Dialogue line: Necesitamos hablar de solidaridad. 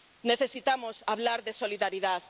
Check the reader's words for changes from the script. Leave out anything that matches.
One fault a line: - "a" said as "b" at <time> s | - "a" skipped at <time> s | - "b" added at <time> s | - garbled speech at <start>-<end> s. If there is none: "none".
none